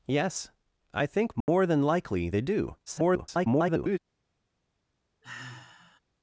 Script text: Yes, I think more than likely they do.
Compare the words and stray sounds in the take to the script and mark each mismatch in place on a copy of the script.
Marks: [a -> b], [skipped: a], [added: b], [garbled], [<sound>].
Yes, I think more [dropout] than likely they do. [garbled] [sigh]